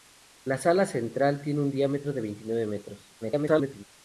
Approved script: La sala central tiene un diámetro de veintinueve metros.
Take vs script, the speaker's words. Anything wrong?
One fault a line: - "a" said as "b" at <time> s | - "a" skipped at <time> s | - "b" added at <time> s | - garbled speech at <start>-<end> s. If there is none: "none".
- garbled speech at 3.2-3.8 s